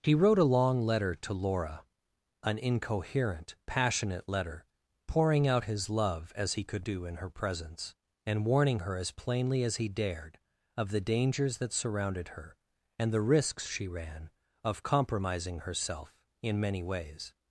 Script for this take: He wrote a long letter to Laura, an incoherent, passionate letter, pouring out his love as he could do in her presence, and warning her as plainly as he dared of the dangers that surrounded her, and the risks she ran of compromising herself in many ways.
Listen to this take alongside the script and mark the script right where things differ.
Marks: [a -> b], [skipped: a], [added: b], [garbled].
He wrote a long letter to Laura, an incoherent, passionate letter, pouring out his love as he could do in her presence, and warning her as plainly as he dared of the dangers that surrounded her, and the risks she ran of compromising herself in many ways.